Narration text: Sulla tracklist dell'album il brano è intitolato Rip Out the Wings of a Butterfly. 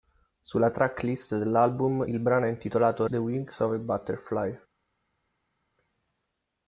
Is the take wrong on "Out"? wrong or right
wrong